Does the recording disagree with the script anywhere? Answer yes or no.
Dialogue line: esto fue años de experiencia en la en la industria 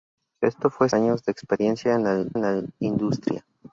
no